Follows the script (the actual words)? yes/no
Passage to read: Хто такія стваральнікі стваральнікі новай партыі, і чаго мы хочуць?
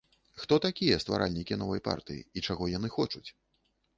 no